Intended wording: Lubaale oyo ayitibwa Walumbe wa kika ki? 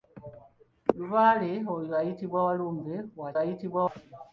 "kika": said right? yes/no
no